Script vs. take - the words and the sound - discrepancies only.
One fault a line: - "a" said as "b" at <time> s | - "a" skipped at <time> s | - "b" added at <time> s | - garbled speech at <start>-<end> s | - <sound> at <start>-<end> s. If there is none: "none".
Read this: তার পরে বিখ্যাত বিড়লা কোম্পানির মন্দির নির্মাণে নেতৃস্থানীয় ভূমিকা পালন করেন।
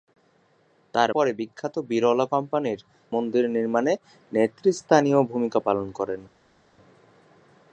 none